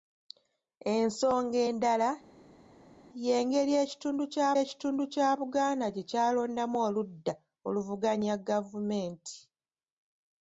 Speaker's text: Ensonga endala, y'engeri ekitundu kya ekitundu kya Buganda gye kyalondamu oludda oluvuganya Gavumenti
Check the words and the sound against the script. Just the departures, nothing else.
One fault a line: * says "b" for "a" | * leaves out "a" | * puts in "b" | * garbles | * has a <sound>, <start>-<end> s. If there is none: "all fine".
all fine